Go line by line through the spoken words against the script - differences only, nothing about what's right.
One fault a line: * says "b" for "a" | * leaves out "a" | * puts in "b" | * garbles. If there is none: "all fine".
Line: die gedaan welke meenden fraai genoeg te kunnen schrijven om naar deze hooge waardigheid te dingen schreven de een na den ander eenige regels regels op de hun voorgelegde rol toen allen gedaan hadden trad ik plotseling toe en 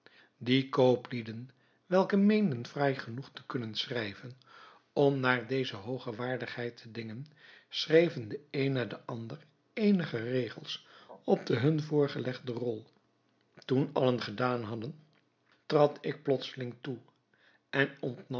* says "kooplieden" for "gedaan"
* leaves out "regels"